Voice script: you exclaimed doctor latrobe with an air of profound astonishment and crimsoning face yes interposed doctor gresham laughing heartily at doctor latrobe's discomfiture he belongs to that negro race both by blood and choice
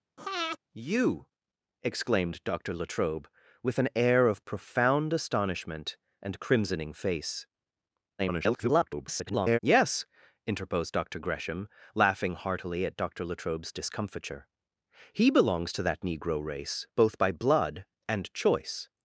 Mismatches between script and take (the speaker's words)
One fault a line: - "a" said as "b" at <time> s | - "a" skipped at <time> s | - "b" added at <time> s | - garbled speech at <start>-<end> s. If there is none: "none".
- garbled speech at 8.2-9.6 s